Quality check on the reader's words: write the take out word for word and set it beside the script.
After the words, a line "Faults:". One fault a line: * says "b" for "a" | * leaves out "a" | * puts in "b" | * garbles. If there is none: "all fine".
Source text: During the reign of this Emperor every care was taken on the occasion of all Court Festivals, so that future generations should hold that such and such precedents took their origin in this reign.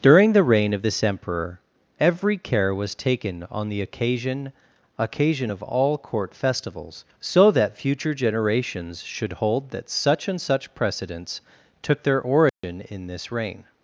During the reign of this Emperor every care was taken on the occasion occasion of all Court Festivals, so that future generations should hold that such and such precedents took their origin in this reign.
Faults:
* puts in "occasion"